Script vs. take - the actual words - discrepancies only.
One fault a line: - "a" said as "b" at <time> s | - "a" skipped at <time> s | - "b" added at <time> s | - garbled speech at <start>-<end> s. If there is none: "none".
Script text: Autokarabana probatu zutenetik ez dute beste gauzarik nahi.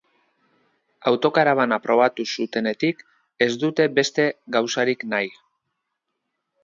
none